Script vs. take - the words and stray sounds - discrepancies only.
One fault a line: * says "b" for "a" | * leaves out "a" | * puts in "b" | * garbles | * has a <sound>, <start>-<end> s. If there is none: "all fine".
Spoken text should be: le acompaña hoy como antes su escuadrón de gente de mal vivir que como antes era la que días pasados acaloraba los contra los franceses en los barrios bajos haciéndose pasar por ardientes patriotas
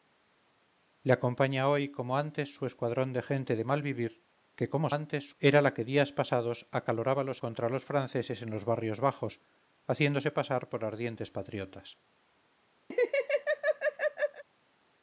* has a laugh, 12.9-14.4 s